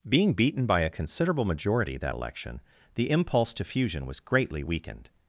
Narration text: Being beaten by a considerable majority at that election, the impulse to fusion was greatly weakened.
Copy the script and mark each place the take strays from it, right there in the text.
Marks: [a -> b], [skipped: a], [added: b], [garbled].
Being beaten by a considerable majority [skipped: at] that election, the impulse to fusion was greatly weakened.